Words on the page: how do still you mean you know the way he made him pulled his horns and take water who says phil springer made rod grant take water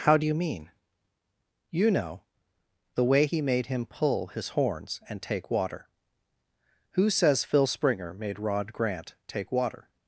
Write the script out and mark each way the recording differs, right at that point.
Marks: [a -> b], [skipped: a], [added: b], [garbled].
how do [skipped: still] you mean you know the way he made him [pulled -> pull] his horns and take water who says phil springer made rod grant take water